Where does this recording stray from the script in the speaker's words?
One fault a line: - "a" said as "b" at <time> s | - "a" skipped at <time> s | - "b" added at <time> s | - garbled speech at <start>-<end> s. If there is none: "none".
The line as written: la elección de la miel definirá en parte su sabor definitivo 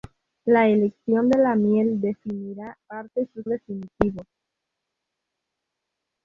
- "en" skipped at 2.8 s
- "sabor" skipped at 3.4 s